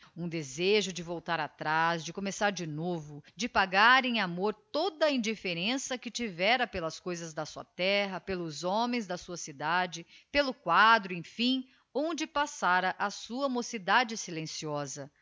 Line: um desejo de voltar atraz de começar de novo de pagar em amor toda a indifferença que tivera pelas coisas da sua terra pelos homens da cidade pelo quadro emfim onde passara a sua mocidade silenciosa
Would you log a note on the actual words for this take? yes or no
yes